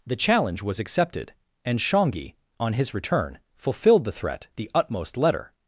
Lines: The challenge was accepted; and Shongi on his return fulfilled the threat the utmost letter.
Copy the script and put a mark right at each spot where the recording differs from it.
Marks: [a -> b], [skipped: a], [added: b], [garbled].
The challenge was accepted; and Shongi on his return fulfilled the threat the utmost letter.